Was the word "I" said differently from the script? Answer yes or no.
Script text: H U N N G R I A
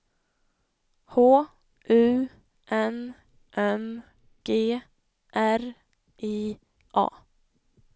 no